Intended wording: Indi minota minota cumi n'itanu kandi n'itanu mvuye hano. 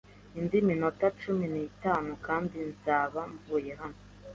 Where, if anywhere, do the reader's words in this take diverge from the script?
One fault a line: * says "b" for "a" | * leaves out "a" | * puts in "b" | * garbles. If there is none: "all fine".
* leaves out "minota"
* says "nzaba" for "n'itanu"